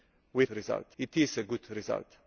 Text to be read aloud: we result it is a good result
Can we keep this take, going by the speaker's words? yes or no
yes